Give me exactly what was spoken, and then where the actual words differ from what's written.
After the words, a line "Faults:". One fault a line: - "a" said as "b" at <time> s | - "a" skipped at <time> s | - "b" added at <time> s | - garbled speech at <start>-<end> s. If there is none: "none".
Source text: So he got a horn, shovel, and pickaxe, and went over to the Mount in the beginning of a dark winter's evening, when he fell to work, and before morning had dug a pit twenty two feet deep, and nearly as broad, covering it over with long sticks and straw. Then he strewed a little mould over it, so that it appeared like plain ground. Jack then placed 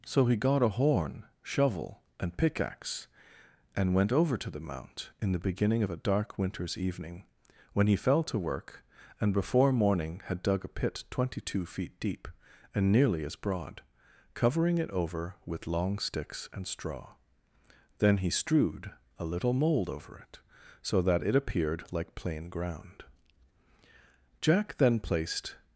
So he got a horn, shovel, and pickaxe, and went over to the Mount in the beginning of a dark winter's evening, when he fell to work, and before morning had dug a pit twenty two feet deep, and nearly as broad, covering it over with long sticks and straw. Then he strewed a little mould over it, so that it appeared like plain ground. Jack then placed
Faults:
none